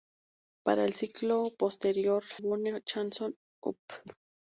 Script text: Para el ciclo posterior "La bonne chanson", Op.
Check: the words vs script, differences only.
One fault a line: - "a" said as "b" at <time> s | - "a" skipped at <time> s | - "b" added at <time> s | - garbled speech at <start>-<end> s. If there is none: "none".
- "La" skipped at 2.2 s